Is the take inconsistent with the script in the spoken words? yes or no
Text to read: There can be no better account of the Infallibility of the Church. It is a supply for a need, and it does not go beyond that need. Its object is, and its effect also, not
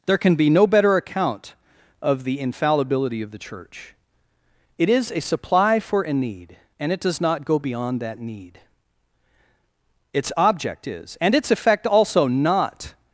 no